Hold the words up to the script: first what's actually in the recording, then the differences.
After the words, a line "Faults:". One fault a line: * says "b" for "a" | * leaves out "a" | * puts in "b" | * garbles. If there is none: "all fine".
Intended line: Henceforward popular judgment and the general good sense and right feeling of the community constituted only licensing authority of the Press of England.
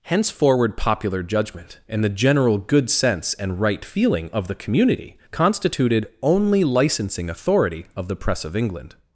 Henceforward popular judgment and the general good sense and right feeling of the community constituted only licensing authority of the Press of England.
Faults:
all fine